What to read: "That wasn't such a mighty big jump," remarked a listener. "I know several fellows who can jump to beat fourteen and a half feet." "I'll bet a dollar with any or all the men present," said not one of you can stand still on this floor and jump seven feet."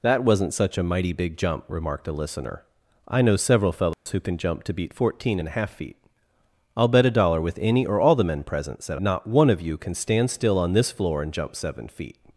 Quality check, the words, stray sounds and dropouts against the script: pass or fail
fail